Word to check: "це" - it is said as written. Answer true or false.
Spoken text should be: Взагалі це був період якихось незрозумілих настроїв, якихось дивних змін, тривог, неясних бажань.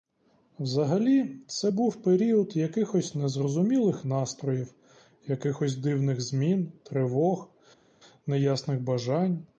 true